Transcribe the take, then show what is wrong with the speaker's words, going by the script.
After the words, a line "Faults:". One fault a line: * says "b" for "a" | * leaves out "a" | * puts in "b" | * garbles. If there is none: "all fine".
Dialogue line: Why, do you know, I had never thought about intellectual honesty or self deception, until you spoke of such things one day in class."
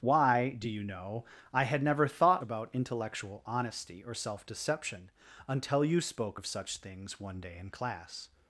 Why, do you know, I had never thought about intellectual honesty or self deception, until you spoke of such things one day in class."
Faults:
all fine